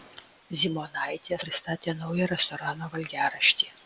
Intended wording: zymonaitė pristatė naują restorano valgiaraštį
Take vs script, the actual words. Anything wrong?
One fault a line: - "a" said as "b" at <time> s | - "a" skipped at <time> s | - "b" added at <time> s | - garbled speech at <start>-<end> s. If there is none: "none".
none